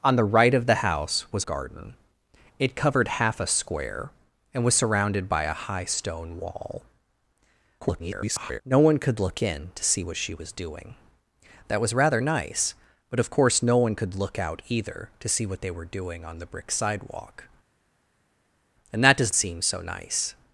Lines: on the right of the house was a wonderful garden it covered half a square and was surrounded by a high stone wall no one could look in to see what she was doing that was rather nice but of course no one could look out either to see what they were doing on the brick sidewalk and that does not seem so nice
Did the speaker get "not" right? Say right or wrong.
wrong